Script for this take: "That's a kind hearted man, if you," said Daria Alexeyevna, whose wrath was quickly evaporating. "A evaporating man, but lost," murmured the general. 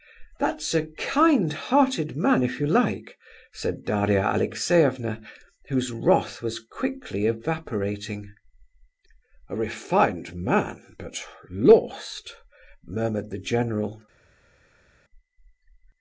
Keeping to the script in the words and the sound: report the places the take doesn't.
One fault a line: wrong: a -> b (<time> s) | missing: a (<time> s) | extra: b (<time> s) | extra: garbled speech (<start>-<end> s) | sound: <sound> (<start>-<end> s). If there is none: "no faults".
extra: like (2.6 s)
wrong: evaporating -> refined (9.6 s)